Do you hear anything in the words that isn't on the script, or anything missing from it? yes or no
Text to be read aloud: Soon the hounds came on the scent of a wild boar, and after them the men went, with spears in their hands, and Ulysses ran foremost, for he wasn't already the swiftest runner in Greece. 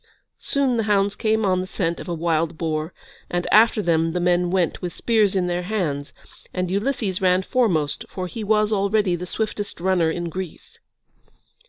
yes